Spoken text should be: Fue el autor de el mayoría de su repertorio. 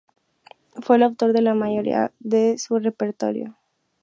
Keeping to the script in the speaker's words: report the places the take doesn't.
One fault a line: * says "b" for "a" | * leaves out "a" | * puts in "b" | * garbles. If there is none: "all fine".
* says "la" for "el"